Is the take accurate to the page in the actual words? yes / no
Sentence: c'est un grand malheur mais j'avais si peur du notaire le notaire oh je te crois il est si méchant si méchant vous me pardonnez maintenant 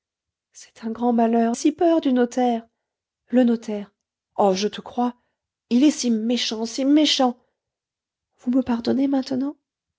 no